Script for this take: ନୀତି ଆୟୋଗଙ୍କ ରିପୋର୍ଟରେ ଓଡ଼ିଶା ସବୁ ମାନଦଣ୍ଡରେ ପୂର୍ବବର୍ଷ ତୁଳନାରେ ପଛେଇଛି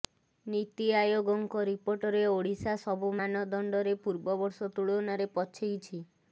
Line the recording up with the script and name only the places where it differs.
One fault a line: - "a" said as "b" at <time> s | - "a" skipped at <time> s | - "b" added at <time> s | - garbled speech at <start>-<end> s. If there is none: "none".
none